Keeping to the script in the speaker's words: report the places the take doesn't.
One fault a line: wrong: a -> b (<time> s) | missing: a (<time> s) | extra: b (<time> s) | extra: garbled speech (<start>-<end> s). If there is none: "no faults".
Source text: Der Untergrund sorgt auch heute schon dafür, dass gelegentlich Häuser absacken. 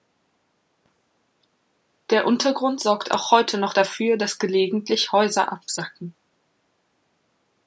wrong: schon -> noch (3.6 s)